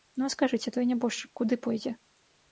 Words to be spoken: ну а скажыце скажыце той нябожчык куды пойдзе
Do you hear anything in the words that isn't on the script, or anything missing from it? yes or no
yes